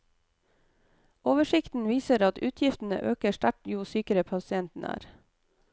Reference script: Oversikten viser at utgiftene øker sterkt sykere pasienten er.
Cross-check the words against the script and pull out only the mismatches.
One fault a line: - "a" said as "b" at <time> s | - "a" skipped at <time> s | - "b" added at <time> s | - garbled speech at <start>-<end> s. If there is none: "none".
- "jo" added at 3.7 s